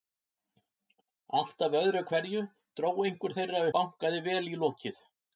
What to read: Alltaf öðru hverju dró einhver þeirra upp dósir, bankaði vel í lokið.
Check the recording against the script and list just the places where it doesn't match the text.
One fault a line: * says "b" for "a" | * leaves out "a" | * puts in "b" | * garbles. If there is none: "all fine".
* leaves out "upp dósir"